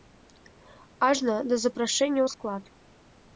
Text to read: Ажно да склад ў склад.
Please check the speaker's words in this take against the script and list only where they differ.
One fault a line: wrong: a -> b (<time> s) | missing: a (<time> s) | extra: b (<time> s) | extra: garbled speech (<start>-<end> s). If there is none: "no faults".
wrong: склад -> запрашэння (1.7 s)